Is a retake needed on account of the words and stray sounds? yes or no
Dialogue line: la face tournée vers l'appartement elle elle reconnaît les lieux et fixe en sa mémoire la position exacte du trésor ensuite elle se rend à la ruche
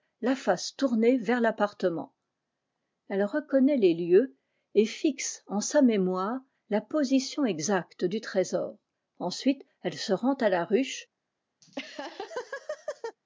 yes